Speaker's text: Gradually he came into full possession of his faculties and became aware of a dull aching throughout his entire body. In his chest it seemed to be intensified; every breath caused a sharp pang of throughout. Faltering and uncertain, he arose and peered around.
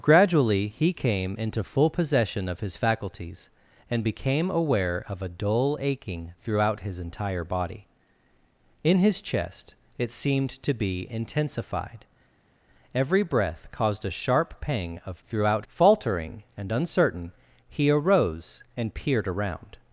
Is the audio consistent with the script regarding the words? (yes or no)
yes